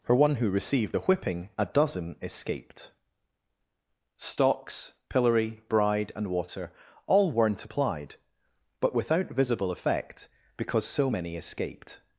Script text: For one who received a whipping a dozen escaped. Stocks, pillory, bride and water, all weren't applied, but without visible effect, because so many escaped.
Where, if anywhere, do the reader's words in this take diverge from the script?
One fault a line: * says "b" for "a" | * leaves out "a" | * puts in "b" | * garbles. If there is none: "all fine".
all fine